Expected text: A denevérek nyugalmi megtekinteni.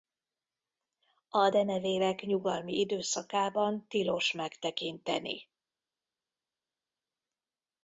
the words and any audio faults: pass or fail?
fail